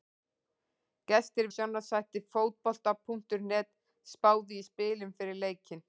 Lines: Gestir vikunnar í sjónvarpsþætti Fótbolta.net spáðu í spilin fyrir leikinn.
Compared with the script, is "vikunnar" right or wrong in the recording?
wrong